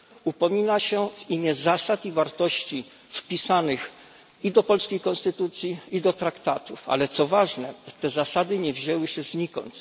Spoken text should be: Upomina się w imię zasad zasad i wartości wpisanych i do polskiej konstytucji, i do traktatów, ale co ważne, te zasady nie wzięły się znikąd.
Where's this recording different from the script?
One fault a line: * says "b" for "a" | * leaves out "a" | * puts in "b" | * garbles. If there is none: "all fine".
* leaves out "zasad"